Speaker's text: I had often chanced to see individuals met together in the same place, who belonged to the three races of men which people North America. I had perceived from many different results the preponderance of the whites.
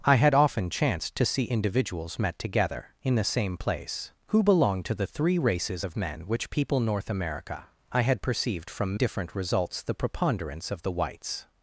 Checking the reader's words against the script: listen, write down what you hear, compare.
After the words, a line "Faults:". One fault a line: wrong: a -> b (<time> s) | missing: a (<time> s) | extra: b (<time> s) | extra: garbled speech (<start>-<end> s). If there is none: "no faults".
I had often chanced to see individuals met together in the same place, who belonged to the three races of men which people North America. I had perceived from different results the preponderance of the whites.
Faults:
missing: many (8.9 s)